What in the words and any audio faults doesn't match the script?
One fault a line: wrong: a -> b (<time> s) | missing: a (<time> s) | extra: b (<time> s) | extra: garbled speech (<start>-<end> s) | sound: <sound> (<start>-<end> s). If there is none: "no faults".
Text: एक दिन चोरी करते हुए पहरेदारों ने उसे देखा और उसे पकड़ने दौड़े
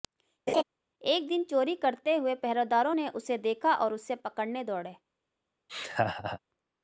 sound: laugh (0.5-0.6 s)
sound: laugh (5.7-6.4 s)